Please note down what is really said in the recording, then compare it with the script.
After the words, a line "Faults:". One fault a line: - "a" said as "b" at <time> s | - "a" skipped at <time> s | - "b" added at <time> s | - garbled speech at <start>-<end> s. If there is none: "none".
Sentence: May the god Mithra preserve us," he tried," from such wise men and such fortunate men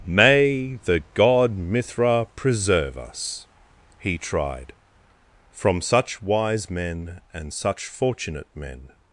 May the god Mithra preserve us," he tried," from such wise men and such fortunate men
Faults:
none